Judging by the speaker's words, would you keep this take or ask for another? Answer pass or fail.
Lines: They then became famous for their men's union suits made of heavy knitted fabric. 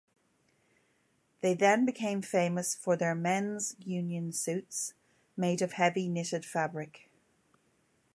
pass